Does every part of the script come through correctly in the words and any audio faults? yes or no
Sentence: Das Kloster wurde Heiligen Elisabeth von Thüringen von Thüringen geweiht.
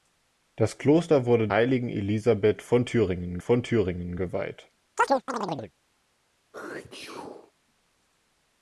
no